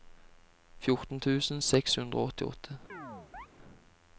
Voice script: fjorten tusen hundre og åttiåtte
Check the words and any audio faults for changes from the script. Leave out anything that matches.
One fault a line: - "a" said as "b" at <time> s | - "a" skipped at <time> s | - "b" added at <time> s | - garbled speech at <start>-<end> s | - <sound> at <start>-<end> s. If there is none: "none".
- "seks" added at 1.6 s
- chirp at 2.9-3.5 s